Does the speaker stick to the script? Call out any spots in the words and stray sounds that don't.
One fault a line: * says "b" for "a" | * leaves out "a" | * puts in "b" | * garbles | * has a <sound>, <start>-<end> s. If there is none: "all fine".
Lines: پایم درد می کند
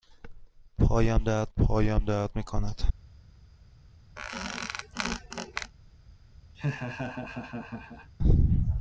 * puts in "پایم درد"
* has a squeak, 4.2-5.7 s
* has a laugh, 6.5-8.1 s